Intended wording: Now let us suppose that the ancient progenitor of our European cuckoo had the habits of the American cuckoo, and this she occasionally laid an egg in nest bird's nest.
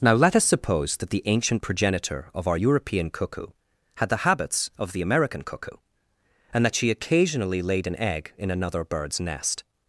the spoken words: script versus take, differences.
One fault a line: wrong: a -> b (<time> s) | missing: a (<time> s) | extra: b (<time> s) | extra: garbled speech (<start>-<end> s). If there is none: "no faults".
wrong: this -> that (6.6 s)
wrong: nest -> another (8.5 s)